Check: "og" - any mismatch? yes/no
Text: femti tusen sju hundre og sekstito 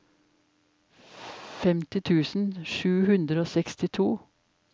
no